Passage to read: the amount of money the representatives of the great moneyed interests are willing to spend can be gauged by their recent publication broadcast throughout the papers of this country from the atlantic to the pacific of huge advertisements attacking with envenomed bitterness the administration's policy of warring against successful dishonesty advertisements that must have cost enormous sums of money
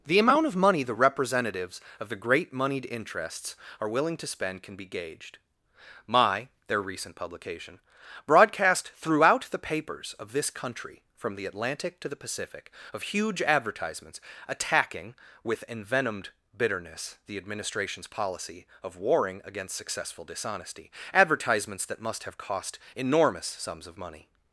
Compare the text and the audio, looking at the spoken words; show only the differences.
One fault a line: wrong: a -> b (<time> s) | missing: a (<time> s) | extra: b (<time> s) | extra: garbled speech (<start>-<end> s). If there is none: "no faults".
wrong: by -> my (6.1 s)